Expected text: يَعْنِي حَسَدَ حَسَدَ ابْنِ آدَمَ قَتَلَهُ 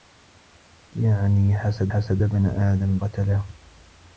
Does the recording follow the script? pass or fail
pass